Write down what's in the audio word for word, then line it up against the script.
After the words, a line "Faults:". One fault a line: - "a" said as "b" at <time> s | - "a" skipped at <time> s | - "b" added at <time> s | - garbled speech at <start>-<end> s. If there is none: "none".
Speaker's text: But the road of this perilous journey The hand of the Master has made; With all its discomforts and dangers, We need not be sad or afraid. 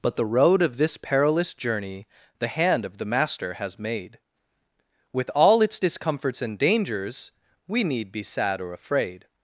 But the road of this perilous journey The hand of the Master has made; With all its discomforts and dangers, We need be sad or afraid.
Faults:
- "not" skipped at 8.1 s